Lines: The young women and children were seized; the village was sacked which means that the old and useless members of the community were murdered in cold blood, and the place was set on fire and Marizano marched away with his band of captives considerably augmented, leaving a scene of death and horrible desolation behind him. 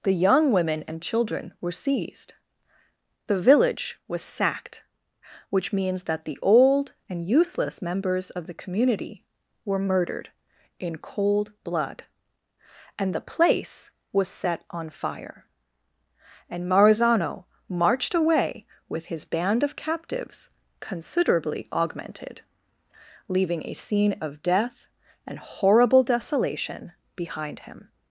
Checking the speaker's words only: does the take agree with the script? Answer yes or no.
yes